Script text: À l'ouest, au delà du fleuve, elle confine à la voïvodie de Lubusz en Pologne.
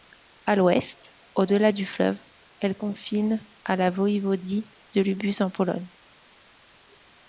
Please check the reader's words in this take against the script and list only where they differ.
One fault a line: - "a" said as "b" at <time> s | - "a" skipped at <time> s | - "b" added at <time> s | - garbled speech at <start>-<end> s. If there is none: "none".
none